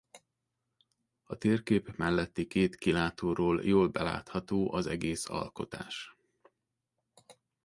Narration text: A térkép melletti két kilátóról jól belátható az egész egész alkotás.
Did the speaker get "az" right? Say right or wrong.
right